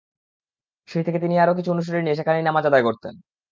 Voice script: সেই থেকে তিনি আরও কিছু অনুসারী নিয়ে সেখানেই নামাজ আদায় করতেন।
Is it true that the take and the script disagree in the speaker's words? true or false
false